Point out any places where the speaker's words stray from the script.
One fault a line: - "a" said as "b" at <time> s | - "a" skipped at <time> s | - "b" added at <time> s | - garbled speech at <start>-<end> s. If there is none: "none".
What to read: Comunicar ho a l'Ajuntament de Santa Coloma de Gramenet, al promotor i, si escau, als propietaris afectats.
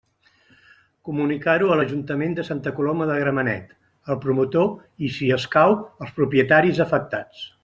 none